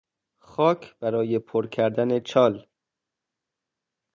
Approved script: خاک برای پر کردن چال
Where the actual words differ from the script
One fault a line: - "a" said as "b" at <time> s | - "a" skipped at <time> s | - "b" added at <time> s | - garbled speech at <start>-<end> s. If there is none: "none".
none